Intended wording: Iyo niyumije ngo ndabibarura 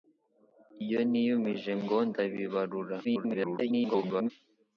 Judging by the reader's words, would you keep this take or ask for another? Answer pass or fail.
fail